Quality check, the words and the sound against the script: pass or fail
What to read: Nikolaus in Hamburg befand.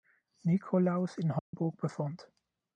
fail